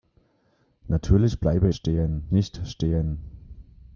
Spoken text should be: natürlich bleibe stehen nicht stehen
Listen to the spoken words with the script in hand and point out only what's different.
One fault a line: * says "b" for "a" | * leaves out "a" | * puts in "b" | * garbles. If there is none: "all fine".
all fine